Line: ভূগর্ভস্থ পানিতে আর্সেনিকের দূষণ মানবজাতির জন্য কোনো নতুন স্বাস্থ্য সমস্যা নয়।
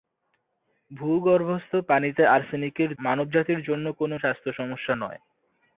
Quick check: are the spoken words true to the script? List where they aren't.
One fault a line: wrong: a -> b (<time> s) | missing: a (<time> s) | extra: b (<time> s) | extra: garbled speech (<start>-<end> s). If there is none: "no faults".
missing: দূষণ (2.9 s)
missing: নতুন (4.2 s)